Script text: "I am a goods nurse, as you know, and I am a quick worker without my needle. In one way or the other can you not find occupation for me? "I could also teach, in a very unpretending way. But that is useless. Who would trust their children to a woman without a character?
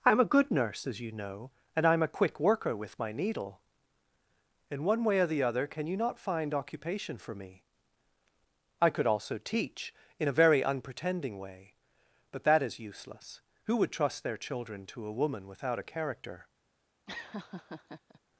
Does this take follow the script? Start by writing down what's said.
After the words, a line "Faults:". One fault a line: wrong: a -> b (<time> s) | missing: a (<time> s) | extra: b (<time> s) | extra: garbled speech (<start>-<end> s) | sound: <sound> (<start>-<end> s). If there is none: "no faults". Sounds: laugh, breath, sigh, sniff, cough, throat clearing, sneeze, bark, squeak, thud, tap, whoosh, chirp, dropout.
"I am a good nurse, as you know, and I am a quick worker with my needle. In one way or the other can you not find occupation for me? "I could also teach, in a very unpretending way. But that is useless. Who would trust their children to a woman without a character?
Faults:
wrong: goods -> good (0.2 s)
wrong: without -> with (2.8 s)
sound: laugh (17.1-18.2 s)